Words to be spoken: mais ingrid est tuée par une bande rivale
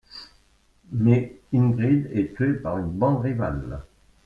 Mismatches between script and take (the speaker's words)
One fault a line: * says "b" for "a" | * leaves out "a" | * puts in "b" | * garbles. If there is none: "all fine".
all fine